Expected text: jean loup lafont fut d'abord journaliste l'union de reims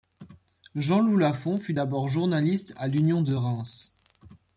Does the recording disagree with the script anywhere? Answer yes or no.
yes